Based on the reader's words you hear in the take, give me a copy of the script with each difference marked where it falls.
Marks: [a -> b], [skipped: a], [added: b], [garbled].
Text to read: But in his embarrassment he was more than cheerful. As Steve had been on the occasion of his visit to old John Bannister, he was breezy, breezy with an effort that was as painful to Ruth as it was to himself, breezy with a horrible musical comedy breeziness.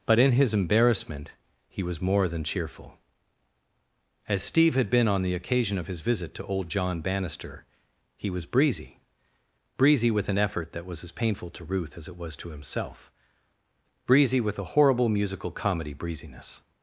But in his embarrassment he was more than cheerful. As Steve had been on the occasion of his visit to old John Bannister, he was breezy, breezy with an effort that was as painful to Ruth as it was to himself, breezy with a horrible musical comedy breeziness.